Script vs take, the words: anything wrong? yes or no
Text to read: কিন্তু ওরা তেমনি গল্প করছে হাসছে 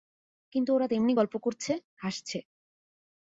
no